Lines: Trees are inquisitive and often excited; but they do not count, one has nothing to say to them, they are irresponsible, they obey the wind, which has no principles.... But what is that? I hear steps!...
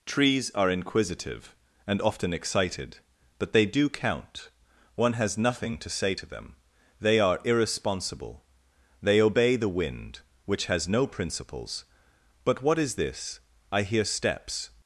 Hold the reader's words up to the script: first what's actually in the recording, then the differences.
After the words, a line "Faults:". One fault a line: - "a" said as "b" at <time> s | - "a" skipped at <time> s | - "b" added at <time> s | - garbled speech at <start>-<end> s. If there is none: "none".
Trees are inquisitive and often excited; but they do count, one has nothing to say to them, they are irresponsible, they obey the wind, which has no principles.... But what is this? I hear steps!...
Faults:
- "not" skipped at 3.9 s
- "that" said as "this" at 12.9 s